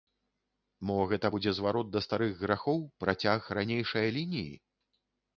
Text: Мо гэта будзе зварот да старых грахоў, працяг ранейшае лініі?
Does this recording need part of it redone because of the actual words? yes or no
no